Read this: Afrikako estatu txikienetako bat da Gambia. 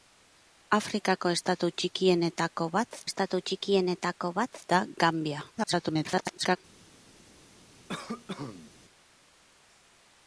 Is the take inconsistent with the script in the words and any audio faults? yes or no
yes